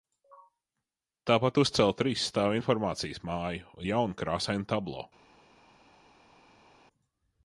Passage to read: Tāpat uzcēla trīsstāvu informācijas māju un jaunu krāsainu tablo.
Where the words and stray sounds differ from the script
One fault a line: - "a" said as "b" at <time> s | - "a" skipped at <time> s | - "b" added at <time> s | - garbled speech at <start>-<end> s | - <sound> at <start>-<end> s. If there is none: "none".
none